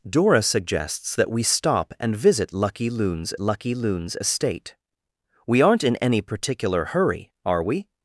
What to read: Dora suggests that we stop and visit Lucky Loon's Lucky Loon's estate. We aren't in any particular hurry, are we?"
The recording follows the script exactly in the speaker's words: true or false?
true